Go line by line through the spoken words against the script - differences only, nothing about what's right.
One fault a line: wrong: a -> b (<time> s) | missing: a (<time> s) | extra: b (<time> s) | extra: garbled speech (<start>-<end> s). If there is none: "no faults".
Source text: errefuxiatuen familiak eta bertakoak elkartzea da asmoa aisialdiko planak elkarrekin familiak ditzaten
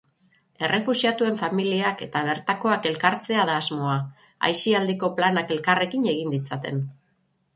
wrong: familiak -> egin (6.1 s)